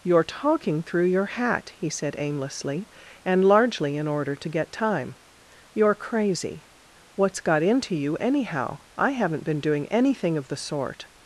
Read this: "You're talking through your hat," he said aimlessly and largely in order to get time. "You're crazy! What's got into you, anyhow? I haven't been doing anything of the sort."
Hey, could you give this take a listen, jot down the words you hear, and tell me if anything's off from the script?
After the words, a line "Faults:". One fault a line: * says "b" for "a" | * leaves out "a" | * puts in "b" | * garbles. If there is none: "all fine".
"You're talking through your hat," he said aimlessly and largely in order to get time. "You're crazy! What's got into you, anyhow? I haven't been doing anything of the sort."
Faults:
all fine